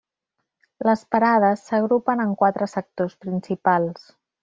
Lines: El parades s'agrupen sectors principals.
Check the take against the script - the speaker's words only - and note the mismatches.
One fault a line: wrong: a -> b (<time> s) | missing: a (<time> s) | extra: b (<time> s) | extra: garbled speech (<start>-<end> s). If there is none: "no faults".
wrong: El -> Les (0.9 s)
extra: en quatre (2.2 s)